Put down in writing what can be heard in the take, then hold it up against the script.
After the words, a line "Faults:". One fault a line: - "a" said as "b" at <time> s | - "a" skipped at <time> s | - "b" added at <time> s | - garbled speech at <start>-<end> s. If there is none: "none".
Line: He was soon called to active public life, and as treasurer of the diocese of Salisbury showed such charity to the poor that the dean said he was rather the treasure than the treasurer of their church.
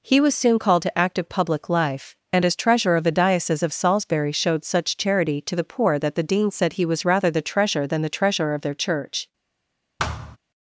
He was soon called to active public life, and as treasurer of the diocese of Salisbury showed such charity to the poor that the dean said he was rather the treasure than the treasurer of their church.
Faults:
none